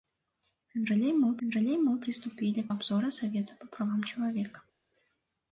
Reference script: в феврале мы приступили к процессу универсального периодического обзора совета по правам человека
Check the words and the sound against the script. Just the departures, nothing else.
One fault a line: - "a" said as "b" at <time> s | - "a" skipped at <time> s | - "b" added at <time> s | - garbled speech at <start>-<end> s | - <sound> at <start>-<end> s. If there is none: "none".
- "феврале мы" added at 1.4 s
- "процессу универсального периодического" skipped at 2.7 s